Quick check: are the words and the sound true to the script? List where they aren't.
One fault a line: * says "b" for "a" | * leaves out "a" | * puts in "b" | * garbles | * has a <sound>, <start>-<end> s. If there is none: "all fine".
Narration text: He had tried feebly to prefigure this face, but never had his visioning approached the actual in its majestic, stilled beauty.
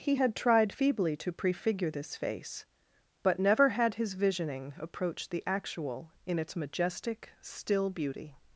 * says "still" for "stilled"